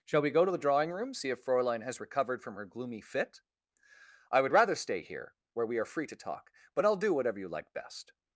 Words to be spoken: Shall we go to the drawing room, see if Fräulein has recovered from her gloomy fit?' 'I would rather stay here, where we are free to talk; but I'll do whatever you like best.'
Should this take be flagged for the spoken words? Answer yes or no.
no